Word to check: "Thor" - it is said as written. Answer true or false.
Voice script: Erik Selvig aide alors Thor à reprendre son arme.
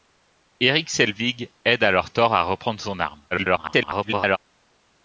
true